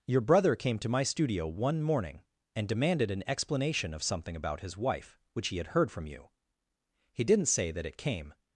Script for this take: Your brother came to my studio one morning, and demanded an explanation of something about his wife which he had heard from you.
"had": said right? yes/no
yes